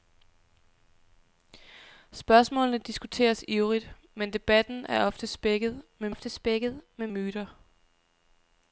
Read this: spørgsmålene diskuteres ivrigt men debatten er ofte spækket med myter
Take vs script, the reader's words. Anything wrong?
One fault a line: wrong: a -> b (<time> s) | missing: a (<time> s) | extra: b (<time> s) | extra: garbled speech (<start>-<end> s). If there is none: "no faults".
extra: ofte spækket med (6.1 s)